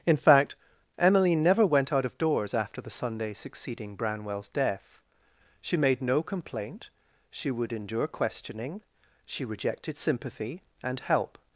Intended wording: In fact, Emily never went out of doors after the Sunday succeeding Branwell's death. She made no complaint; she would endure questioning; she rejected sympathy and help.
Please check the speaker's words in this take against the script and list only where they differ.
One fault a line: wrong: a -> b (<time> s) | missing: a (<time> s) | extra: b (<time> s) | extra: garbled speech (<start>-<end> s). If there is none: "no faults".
no faults